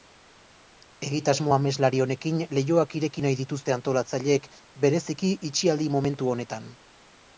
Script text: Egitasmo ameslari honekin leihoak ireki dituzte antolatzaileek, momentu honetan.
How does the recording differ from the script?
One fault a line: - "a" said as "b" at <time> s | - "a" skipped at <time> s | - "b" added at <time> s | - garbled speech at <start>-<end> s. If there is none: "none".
- "nahi" added at 3.3 s
- "bereziki itxialdi" added at 4.9 s